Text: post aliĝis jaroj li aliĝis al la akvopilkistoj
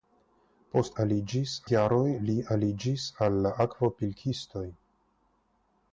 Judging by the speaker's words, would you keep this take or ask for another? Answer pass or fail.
pass